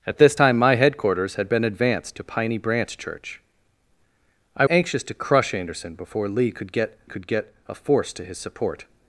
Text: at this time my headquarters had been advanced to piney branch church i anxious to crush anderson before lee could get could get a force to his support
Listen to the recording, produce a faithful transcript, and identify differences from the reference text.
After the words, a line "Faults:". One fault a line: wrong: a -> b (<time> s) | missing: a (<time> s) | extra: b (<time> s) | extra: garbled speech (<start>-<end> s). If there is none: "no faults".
at this time my headquarters had been advanced to piney branch church i anxious to crush anderson before lee could get could get a force to his support
Faults:
no faults